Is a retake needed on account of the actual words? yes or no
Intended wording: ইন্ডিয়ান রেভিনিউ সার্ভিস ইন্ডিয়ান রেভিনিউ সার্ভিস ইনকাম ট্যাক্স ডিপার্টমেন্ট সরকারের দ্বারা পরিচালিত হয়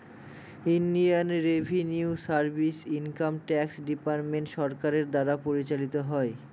yes